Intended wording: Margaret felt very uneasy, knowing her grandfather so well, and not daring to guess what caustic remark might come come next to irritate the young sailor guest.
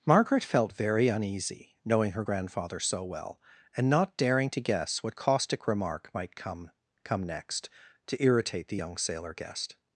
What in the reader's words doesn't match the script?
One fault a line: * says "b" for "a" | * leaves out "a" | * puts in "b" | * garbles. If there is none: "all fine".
all fine